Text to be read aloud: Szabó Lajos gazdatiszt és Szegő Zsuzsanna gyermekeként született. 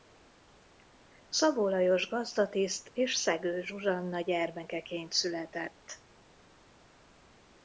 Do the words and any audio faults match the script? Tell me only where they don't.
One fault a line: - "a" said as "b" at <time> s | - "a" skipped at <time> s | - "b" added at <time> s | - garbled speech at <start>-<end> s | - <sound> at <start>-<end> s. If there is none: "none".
none